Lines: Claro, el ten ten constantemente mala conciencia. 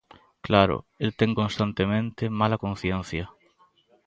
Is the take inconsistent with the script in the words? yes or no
yes